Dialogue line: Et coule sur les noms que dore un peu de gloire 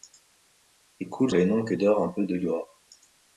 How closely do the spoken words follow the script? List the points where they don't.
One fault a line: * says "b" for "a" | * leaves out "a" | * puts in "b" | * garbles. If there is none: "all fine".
* leaves out "sur"